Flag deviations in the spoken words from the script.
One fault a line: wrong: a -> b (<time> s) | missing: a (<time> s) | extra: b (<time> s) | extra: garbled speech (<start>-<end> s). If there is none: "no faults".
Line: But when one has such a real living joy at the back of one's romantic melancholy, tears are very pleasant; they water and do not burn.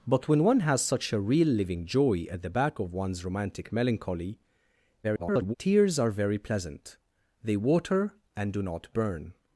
extra: garbled speech (5.0-5.5 s)